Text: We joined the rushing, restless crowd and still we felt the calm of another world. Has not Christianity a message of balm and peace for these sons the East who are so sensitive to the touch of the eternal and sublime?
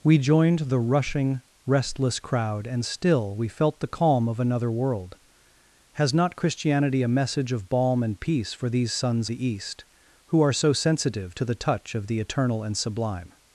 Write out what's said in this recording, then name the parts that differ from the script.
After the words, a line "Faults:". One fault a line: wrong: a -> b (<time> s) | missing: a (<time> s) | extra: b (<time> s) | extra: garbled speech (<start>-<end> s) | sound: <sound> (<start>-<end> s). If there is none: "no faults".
We joined the rushing, restless crowd and still we felt the calm of another world. Has not Christianity a message of balm and peace for these sons the East who are so sensitive to the touch of the eternal and sublime?
Faults:
no faults